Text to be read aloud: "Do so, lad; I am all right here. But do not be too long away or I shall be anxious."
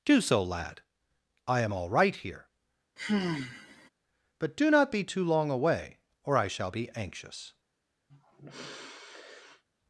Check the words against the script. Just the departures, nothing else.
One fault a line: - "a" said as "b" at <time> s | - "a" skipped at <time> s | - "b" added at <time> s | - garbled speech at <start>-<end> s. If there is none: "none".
none